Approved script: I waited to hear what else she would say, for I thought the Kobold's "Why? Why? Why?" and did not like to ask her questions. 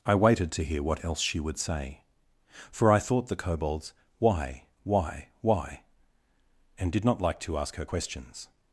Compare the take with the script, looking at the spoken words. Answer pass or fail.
pass